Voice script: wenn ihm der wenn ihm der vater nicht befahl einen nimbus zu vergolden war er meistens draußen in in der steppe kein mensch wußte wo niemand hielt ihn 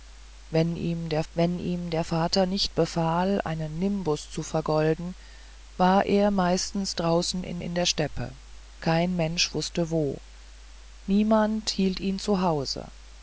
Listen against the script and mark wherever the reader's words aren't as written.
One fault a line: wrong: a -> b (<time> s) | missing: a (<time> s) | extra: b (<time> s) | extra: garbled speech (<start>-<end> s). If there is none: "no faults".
no faults